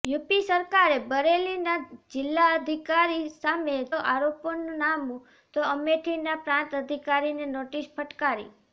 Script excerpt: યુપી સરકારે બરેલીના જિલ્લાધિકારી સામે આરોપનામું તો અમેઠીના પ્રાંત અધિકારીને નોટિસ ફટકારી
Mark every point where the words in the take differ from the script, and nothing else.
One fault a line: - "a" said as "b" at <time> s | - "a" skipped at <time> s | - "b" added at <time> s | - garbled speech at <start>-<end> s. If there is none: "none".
none